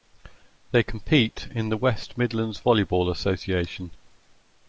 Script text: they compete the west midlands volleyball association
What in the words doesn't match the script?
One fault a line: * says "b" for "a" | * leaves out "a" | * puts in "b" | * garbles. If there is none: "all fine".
* puts in "in"